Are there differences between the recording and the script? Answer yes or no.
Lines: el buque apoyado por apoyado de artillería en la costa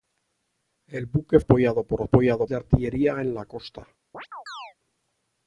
no